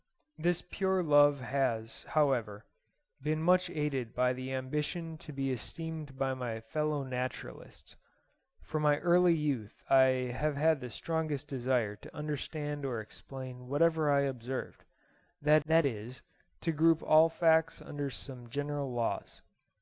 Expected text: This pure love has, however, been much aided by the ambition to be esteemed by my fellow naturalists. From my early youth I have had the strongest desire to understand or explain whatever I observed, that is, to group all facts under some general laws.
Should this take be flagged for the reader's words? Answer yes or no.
yes